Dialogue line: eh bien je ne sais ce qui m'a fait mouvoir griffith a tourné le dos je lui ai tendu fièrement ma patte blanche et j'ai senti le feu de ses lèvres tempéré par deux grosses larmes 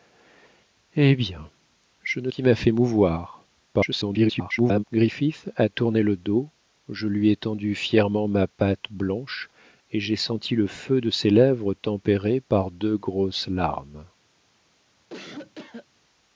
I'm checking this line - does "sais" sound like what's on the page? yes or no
no